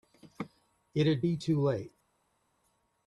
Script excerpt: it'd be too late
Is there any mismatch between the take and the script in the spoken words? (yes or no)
no